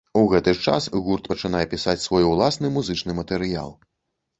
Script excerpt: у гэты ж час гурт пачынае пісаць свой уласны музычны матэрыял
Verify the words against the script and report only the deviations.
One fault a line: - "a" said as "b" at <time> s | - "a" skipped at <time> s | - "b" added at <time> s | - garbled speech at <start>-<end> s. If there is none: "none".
none